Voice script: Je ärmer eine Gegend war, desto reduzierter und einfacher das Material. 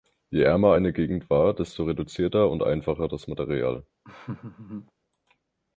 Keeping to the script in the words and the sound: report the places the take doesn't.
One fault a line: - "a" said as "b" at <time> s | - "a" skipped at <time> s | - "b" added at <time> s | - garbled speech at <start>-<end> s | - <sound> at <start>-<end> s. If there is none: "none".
- laugh at 4.0-4.9 s